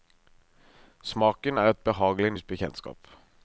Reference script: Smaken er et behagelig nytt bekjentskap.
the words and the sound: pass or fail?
pass